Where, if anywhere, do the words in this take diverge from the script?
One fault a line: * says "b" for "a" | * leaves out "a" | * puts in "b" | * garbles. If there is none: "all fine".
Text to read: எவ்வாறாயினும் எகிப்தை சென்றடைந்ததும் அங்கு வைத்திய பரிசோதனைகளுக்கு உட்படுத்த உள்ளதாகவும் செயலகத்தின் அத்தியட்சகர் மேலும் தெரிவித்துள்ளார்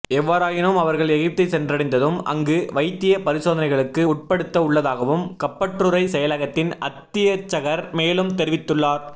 * puts in "அவர்கள்"
* puts in "கப்பற்றுறை"